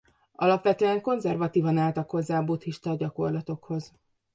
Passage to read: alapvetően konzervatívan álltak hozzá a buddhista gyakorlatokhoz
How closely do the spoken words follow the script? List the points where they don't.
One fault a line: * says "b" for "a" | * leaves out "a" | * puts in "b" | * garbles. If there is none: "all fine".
all fine